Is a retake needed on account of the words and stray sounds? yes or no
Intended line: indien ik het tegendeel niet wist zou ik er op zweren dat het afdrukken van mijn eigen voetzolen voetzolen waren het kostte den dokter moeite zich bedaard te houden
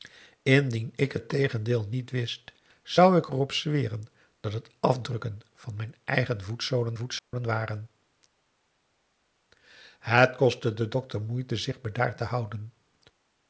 yes